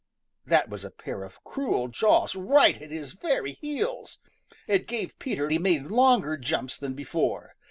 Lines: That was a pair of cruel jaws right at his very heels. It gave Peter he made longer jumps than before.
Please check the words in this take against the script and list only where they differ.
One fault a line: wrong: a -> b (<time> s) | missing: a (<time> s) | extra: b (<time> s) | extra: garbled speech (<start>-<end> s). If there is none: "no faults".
no faults